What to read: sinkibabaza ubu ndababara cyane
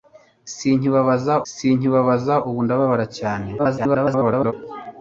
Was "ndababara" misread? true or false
false